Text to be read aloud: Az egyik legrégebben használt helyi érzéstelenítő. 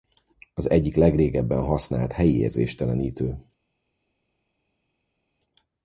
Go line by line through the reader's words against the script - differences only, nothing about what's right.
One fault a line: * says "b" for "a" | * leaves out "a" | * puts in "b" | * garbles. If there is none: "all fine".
all fine